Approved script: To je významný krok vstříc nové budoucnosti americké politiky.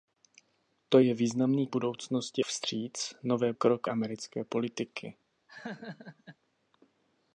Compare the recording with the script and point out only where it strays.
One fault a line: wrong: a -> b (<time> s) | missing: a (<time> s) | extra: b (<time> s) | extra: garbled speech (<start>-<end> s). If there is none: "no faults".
wrong: krok -> budoucnosti (1.7 s)
wrong: budoucnosti -> krok (3.5 s)